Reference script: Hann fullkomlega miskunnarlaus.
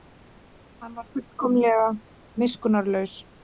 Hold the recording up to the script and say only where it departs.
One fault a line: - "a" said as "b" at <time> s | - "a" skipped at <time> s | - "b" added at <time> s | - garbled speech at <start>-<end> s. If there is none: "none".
- "var" added at 1.0 s